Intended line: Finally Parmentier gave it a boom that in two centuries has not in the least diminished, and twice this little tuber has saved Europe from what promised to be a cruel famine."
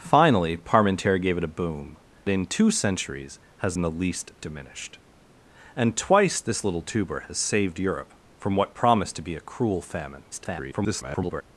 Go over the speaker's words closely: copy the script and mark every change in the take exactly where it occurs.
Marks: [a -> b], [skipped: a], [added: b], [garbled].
Finally Parmentier gave it a boom [skipped: that] in two centuries has [skipped: not] in the least diminished, and twice this little tuber has saved Europe from what promised to be a cruel famine." [garbled]